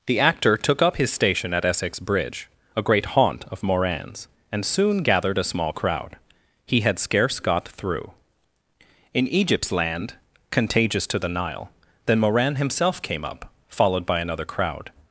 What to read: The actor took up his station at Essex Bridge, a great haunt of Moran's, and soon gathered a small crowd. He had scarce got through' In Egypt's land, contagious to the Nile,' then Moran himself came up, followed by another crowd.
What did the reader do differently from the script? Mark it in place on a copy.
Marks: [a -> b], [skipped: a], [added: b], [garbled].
The actor took up his station at Essex Bridge, a great haunt of Moran's, and soon gathered a small crowd. He had scarce got through' In Egypt's land, contagious to the Nile,' then Moran himself came up, followed by another crowd.